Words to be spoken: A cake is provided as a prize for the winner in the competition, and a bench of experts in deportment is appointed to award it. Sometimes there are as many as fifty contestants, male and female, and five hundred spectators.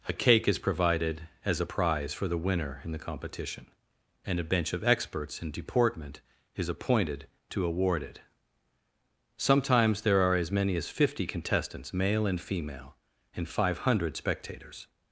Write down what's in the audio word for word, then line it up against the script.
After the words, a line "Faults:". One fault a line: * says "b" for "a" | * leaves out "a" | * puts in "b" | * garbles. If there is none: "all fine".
A cake is provided as a prize for the winner in the competition, and a bench of experts in deportment is appointed to award it. Sometimes there are as many as fifty contestants, male and female, and five hundred spectators.
Faults:
all fine